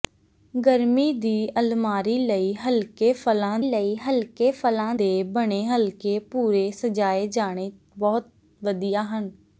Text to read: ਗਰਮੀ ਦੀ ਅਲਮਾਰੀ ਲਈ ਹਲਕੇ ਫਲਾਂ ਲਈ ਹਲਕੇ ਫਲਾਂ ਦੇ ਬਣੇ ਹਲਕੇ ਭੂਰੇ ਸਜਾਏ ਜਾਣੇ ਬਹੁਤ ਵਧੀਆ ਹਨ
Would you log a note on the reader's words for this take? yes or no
no